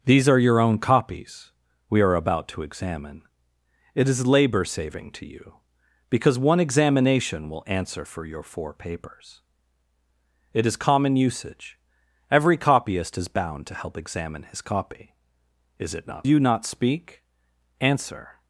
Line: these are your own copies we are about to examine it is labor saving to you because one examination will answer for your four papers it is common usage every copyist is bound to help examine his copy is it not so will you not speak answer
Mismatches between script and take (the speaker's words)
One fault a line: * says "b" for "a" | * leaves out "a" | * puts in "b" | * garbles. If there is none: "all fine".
* leaves out "so will"